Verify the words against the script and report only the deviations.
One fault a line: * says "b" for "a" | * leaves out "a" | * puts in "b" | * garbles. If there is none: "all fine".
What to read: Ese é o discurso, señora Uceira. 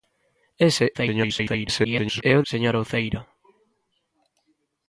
* garbles
* leaves out "discurso"